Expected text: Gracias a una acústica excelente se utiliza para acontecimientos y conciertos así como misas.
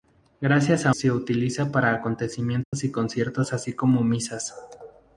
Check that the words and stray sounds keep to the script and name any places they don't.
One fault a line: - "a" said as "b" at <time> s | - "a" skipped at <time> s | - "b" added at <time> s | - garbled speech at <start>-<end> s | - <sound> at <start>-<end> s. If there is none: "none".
- "una acústica excelente" skipped at 0.9 s
- dropout at 2.6-2.7 s